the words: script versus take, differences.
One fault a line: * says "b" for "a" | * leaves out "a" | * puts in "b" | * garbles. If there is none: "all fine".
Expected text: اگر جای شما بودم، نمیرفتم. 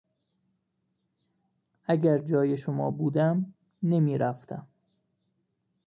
all fine